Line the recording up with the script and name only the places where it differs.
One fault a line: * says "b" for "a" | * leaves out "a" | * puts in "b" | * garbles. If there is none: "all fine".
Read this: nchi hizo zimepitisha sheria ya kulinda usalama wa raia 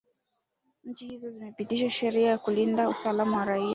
all fine